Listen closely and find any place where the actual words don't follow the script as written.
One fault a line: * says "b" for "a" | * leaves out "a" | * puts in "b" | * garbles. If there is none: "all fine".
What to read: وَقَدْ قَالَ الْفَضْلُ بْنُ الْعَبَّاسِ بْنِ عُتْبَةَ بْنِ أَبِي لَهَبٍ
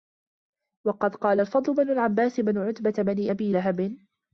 all fine